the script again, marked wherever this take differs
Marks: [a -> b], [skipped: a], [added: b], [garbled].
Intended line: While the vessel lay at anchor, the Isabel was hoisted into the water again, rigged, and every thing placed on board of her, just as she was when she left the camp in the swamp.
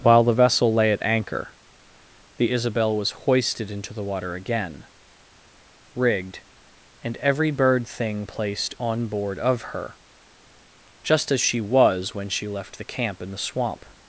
While the vessel lay at anchor, the Isabel was hoisted into the water again, rigged, and every [added: bird] thing placed on board of her, just as she was when she left the camp in the swamp.